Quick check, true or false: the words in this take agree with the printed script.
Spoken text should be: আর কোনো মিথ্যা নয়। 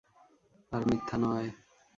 false